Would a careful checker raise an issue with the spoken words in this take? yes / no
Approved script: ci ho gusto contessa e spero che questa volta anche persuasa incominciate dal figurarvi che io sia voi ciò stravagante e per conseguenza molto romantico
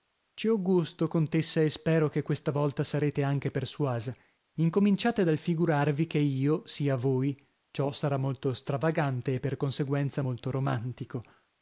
yes